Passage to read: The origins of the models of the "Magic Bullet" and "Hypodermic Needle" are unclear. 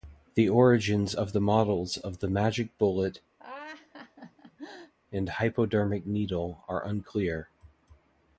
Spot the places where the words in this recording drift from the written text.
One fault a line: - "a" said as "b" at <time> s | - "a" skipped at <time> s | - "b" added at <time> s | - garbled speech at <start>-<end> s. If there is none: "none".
none